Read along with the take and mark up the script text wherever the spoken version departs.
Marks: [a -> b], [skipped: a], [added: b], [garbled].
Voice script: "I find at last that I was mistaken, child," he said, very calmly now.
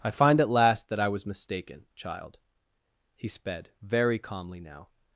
"I find at last that I was mistaken, child," he [said, -> sped] very calmly now.